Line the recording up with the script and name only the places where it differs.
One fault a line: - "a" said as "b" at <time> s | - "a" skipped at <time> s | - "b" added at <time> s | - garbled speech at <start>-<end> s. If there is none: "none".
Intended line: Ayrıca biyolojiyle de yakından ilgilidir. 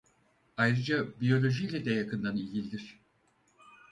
none